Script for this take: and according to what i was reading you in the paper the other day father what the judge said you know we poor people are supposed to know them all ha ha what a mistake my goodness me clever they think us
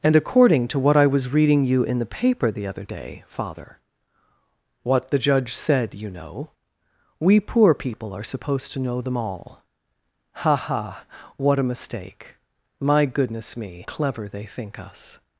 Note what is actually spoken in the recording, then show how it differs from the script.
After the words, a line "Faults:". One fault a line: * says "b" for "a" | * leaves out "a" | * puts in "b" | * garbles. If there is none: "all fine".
and according to what i was reading you in the paper the other day father what the judge said you know we poor people are supposed to know them all ha ha what a mistake my goodness me clever they think us
Faults:
all fine